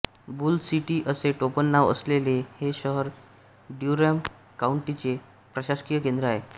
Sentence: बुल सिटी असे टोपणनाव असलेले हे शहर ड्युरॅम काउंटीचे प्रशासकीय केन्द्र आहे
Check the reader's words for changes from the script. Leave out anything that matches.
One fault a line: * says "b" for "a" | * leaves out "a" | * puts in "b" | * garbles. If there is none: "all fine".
all fine